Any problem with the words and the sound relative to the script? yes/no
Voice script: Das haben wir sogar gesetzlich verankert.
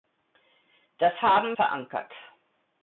yes